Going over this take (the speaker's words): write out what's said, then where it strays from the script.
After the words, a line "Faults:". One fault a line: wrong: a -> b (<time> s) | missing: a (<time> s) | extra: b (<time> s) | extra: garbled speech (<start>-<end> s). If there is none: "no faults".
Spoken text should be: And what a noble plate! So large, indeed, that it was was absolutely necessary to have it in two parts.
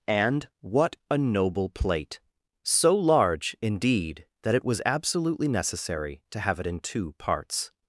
And what a noble plate! So large, indeed, that it was absolutely necessary to have it in two parts.
Faults:
missing: was (4.8 s)